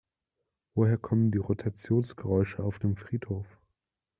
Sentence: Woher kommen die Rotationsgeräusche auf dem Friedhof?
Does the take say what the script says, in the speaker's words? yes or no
yes